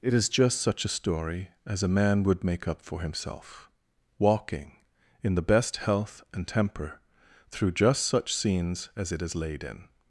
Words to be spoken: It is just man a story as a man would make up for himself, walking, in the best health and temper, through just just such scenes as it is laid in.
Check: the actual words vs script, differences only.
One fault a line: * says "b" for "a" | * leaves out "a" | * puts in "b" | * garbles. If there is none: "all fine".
* says "such" for "man"
* leaves out "just"